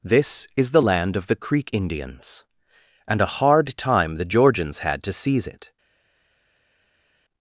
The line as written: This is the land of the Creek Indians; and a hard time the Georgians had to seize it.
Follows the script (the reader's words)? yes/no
yes